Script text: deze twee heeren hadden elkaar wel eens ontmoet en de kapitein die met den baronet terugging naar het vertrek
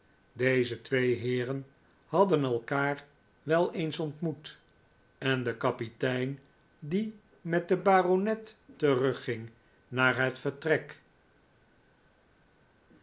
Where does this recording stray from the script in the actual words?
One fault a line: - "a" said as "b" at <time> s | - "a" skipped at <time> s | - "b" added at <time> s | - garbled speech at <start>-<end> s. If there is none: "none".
none